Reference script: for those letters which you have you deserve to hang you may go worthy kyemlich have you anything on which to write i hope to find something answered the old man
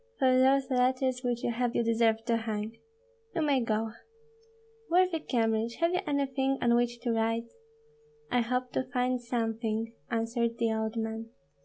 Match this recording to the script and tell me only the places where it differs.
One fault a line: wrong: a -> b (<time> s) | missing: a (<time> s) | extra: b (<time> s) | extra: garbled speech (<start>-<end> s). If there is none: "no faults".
no faults